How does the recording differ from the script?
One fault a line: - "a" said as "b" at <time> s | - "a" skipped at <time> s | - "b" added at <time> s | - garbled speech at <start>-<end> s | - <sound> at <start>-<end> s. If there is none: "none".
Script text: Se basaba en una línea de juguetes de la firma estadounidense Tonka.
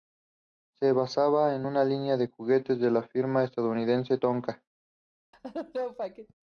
- laugh at 5.3-6.3 s